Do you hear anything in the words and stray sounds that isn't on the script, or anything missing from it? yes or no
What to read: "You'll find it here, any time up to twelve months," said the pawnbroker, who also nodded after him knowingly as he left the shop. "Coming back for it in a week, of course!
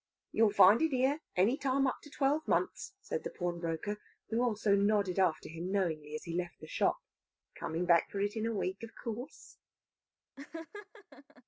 yes